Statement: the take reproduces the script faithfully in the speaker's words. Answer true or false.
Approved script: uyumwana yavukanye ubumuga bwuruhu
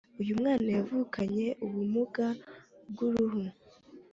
true